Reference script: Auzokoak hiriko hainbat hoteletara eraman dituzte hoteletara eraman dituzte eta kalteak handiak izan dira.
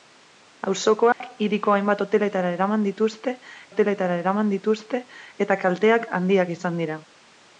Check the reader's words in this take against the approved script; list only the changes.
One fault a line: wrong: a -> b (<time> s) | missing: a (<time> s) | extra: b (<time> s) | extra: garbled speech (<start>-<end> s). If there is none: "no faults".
no faults